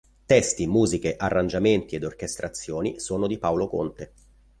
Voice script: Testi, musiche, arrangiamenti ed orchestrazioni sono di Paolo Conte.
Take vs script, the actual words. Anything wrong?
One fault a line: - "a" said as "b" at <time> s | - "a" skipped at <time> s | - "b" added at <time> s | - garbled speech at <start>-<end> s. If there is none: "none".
none